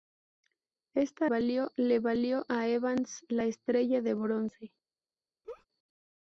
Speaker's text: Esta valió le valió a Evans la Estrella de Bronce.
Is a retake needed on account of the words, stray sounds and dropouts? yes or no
yes